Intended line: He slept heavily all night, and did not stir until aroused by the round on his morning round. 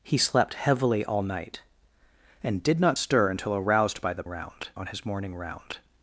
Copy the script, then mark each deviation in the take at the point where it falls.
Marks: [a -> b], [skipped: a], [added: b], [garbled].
He slept heavily all night, and did not stir until aroused by the round on his morning round.